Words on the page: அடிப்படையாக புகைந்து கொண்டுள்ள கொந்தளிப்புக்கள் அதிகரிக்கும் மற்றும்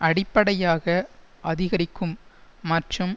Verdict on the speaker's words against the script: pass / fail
fail